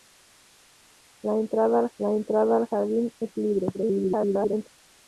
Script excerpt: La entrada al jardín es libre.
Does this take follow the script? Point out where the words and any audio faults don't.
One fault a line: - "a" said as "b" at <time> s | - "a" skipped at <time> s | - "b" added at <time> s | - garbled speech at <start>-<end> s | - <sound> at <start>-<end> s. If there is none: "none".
- "la entrada al" added at 2.0 s
- garbled speech at 3.7-4.7 s